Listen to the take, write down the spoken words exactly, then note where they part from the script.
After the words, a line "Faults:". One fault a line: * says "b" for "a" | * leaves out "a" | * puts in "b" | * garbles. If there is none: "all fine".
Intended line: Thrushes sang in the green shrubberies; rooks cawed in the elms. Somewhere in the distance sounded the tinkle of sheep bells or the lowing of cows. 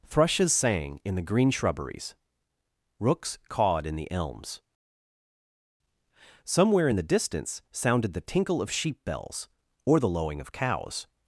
Thrushes sang in the green shrubberies; rooks cawed in the elms. Somewhere in the distance sounded the tinkle of sheep bells or the lowing of cows.
Faults:
all fine